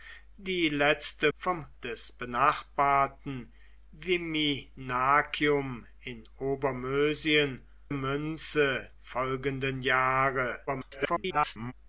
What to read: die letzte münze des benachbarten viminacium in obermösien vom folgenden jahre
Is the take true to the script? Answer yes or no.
no